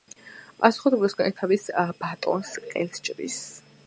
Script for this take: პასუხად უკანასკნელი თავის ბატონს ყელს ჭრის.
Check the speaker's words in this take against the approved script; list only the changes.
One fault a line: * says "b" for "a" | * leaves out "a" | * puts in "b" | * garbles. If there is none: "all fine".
all fine